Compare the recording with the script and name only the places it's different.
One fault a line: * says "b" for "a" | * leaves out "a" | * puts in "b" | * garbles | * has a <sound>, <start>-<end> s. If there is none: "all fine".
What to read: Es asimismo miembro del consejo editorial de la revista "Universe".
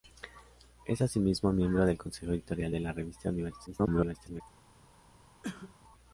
* garbles
* has a cough, 5.4-5.7 s